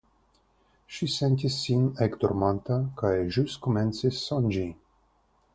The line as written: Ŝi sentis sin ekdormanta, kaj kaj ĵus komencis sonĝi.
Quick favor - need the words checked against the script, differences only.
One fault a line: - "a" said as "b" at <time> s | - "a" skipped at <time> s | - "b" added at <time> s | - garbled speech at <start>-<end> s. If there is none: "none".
- "kaj" skipped at 3.1 s